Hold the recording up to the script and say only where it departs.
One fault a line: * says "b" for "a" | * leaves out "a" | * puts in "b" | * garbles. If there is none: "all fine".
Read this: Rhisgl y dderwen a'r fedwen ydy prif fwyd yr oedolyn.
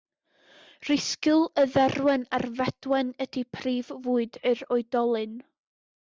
all fine